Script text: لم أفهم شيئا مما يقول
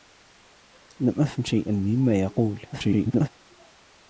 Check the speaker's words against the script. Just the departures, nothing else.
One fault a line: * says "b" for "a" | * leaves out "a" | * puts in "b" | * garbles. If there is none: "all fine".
* garbles